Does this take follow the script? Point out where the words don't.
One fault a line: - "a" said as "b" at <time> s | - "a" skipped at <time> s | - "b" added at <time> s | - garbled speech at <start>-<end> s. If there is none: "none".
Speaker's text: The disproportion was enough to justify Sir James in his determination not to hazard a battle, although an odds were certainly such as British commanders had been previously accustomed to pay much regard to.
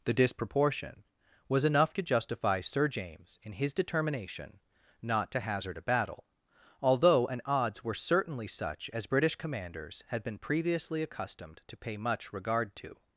none